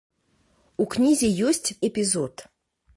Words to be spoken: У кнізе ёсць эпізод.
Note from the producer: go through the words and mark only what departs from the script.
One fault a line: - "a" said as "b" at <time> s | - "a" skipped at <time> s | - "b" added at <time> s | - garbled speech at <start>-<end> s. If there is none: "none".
none